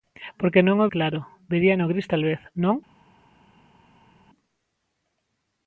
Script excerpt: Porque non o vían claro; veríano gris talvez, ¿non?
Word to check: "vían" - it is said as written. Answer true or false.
false